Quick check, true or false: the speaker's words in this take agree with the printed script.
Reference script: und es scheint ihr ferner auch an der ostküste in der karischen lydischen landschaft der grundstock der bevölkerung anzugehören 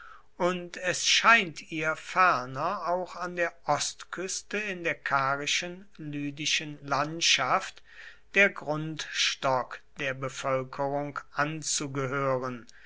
true